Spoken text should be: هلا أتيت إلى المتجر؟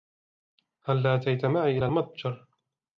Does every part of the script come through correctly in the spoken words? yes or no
no